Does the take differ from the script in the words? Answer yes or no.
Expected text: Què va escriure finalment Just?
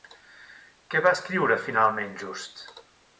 no